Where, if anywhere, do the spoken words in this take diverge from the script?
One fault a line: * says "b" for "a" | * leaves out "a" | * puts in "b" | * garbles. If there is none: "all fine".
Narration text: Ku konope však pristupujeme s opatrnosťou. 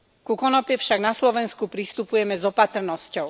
* puts in "na Slovensku"